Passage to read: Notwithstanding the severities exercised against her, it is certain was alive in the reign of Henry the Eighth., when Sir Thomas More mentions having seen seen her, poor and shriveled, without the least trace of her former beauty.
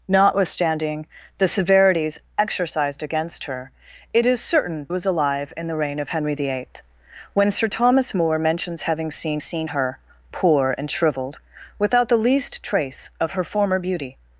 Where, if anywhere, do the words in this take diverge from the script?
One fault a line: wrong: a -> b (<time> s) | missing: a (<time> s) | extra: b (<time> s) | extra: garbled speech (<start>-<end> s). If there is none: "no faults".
no faults